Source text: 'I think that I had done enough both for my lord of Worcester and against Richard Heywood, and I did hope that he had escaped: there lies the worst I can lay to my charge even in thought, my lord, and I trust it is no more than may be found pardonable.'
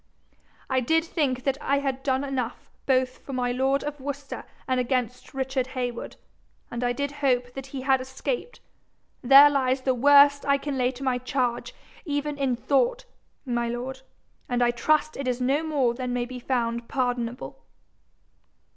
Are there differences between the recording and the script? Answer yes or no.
yes